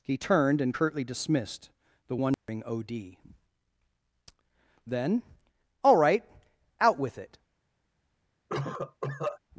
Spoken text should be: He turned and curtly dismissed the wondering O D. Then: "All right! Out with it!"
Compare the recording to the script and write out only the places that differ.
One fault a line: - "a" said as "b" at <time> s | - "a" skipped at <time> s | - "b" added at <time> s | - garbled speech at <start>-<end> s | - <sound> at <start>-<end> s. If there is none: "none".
- dropout at 2.3-2.5 s
- cough at 8.5-9.4 s